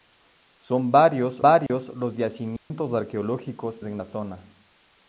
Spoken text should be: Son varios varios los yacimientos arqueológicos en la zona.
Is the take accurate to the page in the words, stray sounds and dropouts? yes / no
no